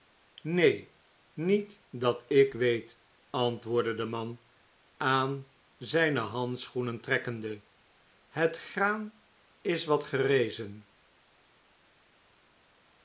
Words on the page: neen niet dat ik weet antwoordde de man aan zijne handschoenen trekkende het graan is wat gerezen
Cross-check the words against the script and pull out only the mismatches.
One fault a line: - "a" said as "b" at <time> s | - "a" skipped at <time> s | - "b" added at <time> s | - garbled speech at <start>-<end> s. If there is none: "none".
none